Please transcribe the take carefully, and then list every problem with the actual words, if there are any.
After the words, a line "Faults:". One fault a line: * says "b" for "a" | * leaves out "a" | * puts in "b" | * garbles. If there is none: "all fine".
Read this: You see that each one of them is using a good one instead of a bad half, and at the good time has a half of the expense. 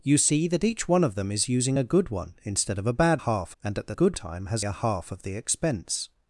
You see that each one of them is using a good one instead of a bad half, and at the good time has a half of the expense.
Faults:
all fine